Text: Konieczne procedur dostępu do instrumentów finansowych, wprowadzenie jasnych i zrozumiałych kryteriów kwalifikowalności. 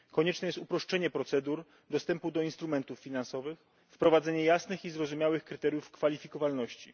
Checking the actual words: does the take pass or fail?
fail